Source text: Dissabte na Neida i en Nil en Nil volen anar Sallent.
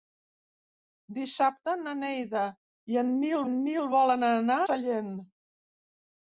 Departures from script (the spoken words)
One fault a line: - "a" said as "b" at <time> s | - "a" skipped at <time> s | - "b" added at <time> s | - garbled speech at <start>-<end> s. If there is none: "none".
none